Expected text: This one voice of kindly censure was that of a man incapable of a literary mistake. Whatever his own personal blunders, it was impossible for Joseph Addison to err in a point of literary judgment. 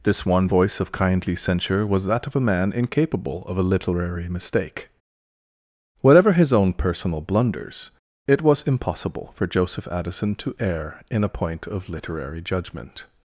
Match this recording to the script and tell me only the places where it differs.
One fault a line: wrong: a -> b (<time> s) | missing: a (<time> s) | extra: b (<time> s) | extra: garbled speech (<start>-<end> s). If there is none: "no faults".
no faults